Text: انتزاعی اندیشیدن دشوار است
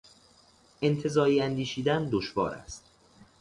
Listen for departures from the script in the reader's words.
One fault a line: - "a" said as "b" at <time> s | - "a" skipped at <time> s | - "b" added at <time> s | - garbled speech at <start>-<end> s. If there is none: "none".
none